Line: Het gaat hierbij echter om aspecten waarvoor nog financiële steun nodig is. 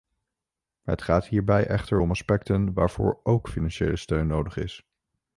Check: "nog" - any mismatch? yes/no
yes